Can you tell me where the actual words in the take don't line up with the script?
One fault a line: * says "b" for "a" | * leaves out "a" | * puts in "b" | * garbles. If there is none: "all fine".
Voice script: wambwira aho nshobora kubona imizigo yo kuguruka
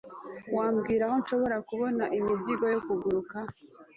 all fine